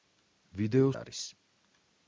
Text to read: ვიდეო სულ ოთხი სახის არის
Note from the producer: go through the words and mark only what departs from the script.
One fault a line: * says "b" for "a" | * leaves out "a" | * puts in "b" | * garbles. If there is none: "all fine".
* leaves out "სულ ოთხი სახის"